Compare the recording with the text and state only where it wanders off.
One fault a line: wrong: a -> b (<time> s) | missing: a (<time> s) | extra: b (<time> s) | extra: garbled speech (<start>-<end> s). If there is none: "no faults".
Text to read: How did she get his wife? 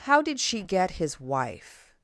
no faults